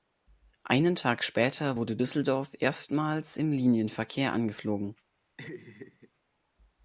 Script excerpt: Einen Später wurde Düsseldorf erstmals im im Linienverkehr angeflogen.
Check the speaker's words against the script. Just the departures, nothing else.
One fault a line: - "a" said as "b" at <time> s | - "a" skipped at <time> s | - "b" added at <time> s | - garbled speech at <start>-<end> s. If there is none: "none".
- "Tag" added at 0.9 s
- "im" skipped at 3.5 s